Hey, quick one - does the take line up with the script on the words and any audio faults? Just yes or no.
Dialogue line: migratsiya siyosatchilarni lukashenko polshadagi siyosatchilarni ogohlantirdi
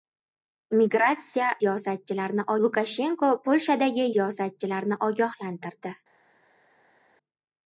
yes